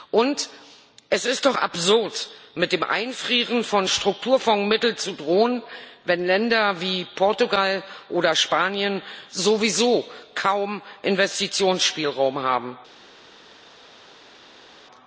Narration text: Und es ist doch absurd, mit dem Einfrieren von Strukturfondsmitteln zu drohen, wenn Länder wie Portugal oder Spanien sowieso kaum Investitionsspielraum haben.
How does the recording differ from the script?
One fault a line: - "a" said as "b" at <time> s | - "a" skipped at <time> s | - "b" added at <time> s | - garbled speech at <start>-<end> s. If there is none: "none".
none